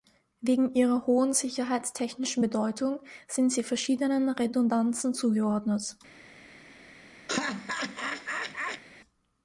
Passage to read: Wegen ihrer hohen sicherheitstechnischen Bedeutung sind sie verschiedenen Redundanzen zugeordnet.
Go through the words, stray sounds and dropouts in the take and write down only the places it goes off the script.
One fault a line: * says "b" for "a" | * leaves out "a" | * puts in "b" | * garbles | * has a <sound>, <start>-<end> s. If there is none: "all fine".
* has a laugh, 7.3-8.8 s